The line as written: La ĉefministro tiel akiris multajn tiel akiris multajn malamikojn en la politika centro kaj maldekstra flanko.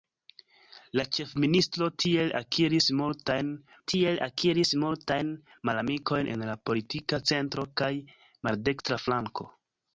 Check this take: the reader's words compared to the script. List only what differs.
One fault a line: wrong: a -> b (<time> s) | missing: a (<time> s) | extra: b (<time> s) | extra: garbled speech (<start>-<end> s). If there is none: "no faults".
no faults